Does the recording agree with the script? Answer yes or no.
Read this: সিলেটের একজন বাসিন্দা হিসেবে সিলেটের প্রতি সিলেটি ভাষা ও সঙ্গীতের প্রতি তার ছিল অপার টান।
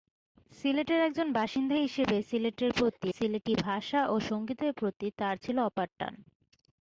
yes